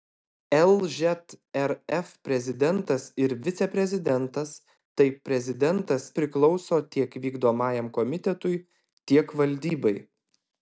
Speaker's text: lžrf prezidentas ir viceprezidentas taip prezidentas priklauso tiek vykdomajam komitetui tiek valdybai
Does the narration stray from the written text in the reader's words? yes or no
no